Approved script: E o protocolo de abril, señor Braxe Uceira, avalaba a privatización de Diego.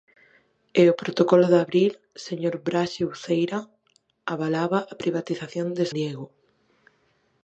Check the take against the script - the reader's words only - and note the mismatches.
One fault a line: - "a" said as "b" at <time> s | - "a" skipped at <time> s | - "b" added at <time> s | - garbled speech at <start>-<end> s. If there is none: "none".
none